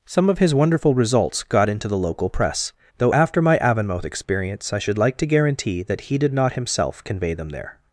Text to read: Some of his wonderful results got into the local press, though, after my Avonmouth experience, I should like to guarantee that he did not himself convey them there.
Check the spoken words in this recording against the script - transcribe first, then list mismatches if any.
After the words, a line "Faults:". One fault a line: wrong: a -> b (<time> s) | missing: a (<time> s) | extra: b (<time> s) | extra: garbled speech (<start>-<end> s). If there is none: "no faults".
Some of his wonderful results got into the local press, though, after my Avonmouth experience, I should like to guarantee that he did not himself convey them there.
Faults:
no faults